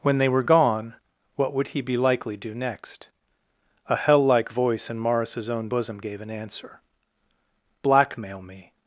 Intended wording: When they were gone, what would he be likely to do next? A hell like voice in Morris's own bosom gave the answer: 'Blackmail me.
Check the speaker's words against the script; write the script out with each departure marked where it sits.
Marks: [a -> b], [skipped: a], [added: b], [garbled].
When they were gone, what would he be likely [skipped: to] do next? A hell like voice in Morris's own bosom gave [the -> an] answer: 'Blackmail me.